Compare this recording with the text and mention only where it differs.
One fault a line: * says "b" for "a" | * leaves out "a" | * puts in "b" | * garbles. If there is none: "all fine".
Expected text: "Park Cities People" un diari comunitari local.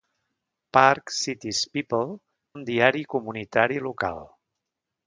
all fine